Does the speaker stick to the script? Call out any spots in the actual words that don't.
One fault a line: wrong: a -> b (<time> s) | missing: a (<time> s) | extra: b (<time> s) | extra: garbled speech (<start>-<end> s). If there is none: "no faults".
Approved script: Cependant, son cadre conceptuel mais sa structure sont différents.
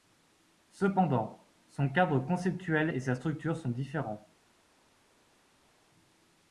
wrong: mais -> et (2.8 s)